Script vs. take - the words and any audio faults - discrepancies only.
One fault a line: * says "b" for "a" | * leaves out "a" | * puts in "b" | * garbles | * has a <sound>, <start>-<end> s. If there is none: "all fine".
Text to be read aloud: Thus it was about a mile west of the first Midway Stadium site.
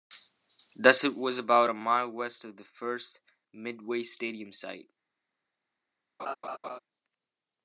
* has a laugh, 6.2-6.8 s